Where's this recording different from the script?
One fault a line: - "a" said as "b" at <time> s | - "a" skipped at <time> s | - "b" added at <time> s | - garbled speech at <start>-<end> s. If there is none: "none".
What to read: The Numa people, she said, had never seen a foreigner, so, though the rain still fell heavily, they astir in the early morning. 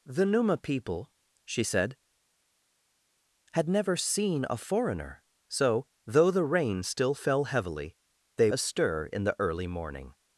none